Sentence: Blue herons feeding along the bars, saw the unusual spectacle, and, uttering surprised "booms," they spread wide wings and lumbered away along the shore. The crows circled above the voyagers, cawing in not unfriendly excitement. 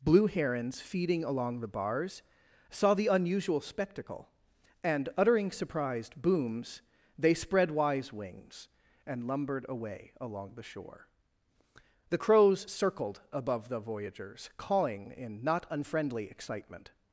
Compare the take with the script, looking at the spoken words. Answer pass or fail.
fail